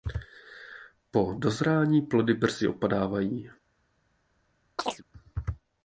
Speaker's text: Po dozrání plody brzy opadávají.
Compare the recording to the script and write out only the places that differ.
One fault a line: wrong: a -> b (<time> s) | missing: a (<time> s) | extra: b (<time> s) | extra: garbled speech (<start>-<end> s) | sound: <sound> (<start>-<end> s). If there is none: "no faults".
sound: chirp (4.8-5.0 s)